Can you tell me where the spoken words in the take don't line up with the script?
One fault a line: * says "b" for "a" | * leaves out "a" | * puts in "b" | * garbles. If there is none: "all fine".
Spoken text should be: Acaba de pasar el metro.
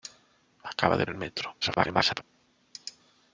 * leaves out "pasar"
* garbles